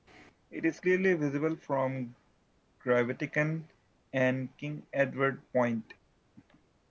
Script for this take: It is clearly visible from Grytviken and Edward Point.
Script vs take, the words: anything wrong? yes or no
yes